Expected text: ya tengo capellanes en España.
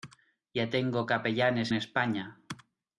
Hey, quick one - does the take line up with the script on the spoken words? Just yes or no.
no